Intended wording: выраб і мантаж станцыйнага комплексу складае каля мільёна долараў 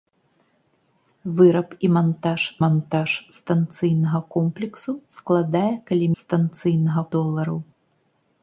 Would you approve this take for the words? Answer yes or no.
no